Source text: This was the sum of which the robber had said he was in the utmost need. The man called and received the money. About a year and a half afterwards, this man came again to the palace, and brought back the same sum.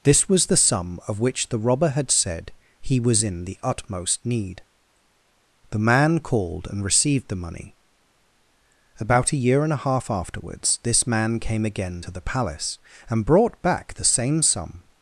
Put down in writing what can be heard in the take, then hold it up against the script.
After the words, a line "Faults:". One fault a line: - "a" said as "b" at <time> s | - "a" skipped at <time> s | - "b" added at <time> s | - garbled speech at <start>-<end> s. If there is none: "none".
This was the sum of which the robber had said he was in the utmost need. The man called and received the money. About a year and a half afterwards, this man came again to the palace, and brought back the same sum.
Faults:
none